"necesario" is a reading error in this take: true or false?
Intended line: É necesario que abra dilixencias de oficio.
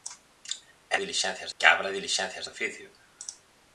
true